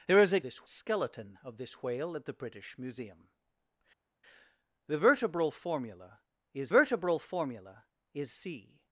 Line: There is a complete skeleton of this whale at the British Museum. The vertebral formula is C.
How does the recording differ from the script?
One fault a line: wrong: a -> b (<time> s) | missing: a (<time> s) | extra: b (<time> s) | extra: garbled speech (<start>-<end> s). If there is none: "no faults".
wrong: complete -> this (0.4 s)
extra: vertebral formula is (6.7 s)